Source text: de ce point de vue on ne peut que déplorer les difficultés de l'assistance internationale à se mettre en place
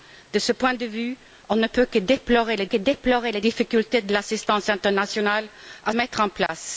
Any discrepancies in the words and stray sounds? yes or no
yes